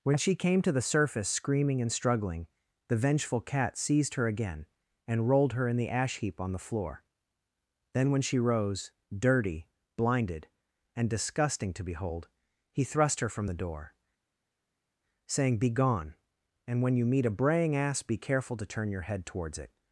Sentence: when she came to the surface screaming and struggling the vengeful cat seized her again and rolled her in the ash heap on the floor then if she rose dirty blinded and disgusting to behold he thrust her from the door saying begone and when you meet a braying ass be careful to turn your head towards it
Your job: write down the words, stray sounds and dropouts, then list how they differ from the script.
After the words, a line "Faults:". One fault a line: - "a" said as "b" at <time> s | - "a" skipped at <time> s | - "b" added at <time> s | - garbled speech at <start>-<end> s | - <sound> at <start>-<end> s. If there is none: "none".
when she came to the surface screaming and struggling the vengeful cat seized her again and rolled her in the ash heap on the floor then when she rose dirty blinded and disgusting to behold he thrust her from the door saying begone and when you meet a braying ass be careful to turn your head towards it
Faults:
- "if" said as "when" at 8.1 s